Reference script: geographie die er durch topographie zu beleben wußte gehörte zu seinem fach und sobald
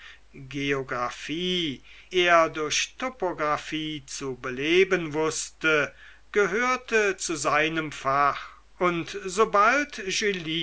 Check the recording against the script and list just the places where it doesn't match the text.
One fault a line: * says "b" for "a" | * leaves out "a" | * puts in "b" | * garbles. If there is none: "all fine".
* leaves out "die"